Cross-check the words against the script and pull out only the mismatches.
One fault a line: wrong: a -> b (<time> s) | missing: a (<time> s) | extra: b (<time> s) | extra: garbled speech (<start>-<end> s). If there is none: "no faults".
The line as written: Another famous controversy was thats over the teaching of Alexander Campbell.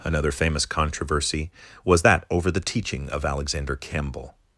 wrong: thats -> that (2.0 s)